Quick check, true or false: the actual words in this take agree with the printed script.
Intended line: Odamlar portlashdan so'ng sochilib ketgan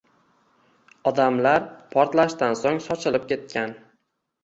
true